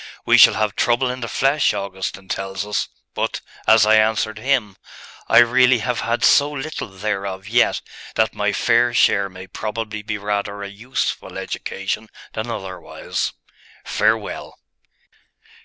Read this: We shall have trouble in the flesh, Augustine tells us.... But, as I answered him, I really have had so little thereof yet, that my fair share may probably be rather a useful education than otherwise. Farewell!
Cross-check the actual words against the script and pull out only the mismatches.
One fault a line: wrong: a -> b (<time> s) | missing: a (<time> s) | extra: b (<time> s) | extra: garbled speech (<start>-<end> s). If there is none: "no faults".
no faults